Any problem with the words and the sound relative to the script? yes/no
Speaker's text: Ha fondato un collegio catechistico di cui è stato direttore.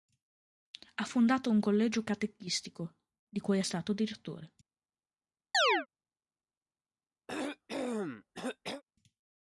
yes